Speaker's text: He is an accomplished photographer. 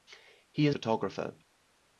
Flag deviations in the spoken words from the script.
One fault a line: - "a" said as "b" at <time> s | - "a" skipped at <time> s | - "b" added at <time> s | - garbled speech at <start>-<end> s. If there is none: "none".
- "an accomplished" skipped at 0.7 s